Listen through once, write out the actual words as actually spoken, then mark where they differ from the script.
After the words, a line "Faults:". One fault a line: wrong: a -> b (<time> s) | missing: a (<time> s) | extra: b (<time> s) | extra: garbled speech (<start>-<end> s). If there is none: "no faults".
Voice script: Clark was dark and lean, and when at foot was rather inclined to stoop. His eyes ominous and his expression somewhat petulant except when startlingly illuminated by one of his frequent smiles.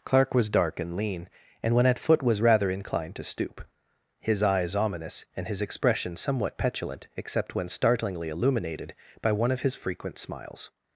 Clark was dark and lean, and when at foot was rather inclined to stoop. His eyes ominous and his expression somewhat petulant except when startlingly illuminated by one of his frequent smiles.
Faults:
no faults